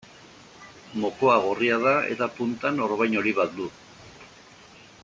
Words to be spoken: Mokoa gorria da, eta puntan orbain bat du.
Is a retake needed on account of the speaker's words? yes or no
yes